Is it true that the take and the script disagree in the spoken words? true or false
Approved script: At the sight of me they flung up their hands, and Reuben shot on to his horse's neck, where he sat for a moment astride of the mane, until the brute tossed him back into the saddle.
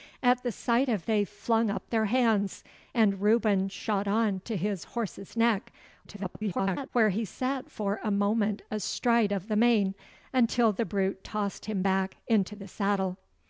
true